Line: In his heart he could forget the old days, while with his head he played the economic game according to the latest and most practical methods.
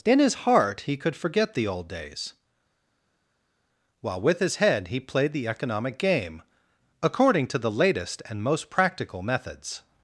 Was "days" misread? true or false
false